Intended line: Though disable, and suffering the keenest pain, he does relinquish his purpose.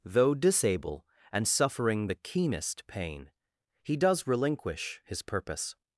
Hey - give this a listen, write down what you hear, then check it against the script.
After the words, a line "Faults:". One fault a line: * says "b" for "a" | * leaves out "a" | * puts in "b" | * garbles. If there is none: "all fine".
Though disable, and suffering the keenest pain, he does relinquish his purpose.
Faults:
all fine